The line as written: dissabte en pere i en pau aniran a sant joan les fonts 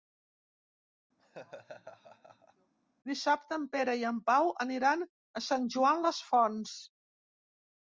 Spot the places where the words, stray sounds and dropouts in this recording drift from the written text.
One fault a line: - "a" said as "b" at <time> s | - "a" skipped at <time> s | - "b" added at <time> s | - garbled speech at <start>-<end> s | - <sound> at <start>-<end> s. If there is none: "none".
- laugh at 1.2-2.7 s